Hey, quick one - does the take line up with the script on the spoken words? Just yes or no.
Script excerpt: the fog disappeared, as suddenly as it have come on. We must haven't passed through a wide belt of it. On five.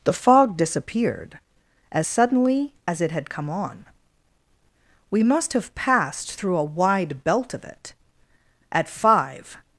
no